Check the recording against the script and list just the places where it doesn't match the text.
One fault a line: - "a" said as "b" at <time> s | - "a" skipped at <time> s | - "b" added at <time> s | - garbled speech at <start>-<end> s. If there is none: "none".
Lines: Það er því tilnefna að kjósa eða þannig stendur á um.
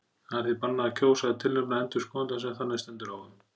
- "tilnefna" said as "bannað" at 0.6 s
- "tilnefna endurskoðanda sem" added at 1.4 s